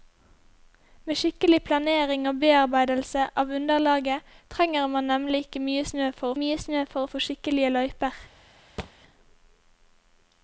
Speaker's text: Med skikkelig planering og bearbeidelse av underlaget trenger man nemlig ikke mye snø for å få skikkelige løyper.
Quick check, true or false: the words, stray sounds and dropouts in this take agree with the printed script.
false